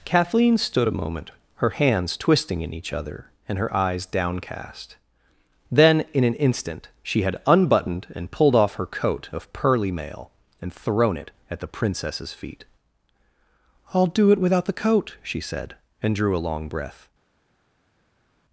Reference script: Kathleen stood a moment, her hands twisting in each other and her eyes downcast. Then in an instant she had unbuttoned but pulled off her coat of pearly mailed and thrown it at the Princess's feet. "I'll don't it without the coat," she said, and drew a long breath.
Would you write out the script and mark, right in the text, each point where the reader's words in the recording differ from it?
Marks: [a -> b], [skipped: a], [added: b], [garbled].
Kathleen stood a moment, her hands twisting in each other and her eyes downcast. Then in an instant she had unbuttoned [but -> and] pulled off her coat of pearly [mailed -> mail] and thrown it at the Princess's feet. "I'll [don't -> do] it without the coat," she said, and drew a long breath.